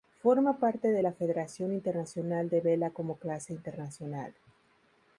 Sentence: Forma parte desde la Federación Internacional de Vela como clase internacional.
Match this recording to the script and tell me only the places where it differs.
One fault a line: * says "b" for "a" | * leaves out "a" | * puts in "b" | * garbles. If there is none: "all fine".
* says "de" for "desde"